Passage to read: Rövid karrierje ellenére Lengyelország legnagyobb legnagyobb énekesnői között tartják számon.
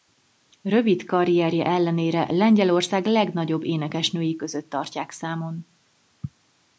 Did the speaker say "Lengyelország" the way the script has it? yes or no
yes